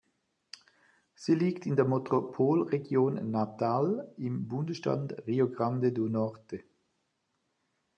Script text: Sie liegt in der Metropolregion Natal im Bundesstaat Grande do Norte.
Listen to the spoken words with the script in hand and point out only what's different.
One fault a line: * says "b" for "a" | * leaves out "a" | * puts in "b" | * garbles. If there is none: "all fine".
* puts in "Rio"